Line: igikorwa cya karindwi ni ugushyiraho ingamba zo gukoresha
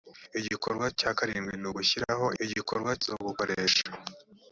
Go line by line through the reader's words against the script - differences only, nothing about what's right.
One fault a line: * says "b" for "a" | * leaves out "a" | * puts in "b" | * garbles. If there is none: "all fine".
* says "igikorwa" for "ingamba"